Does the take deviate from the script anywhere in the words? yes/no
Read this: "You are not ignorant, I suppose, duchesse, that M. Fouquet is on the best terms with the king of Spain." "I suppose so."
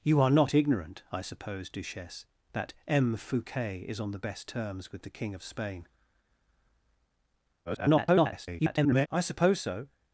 yes